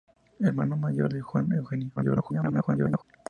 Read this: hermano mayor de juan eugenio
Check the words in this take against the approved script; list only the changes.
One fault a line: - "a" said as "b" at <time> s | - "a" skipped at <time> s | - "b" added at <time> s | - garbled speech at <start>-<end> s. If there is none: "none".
- garbled speech at 2.0-3.0 s